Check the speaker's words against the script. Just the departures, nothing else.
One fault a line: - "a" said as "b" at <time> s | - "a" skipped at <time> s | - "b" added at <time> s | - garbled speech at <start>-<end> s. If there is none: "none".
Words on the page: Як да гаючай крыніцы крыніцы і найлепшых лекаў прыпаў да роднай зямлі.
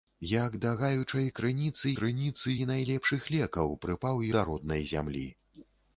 none